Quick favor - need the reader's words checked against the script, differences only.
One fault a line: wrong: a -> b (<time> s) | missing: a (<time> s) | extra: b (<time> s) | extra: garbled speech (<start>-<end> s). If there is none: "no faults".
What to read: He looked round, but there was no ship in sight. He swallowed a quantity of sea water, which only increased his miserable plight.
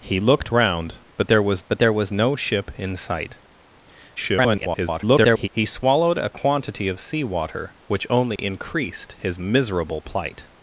extra: but there was (1.7 s)
extra: garbled speech (4.2-5.5 s)